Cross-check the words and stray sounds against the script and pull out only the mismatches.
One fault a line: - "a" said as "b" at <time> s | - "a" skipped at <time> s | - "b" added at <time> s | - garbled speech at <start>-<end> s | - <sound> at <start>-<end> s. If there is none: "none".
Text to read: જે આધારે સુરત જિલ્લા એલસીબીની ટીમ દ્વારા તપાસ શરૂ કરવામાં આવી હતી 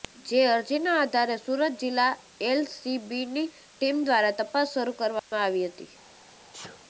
- "અરજીના" added at 0.5 s
- dropout at 5.2-5.3 s
- sneeze at 6.5-6.8 s